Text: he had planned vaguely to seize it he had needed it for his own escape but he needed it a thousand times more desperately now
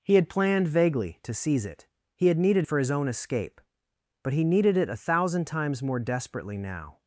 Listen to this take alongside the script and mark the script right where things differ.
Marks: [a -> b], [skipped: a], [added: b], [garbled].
he had planned vaguely to seize it he had needed [skipped: it] for his own escape but he needed it a thousand times more desperately now